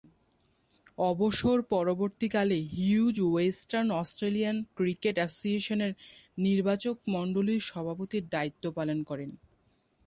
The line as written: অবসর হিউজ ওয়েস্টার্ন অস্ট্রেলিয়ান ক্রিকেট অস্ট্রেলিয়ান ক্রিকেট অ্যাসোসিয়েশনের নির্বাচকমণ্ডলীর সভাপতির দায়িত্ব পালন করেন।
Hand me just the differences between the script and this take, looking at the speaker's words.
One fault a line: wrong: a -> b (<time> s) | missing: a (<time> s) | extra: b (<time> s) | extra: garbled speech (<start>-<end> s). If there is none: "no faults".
extra: পরবর্তীকালে (1.7 s)
missing: অস্ট্রেলিয়ান ক্রিকেট (5.2 s)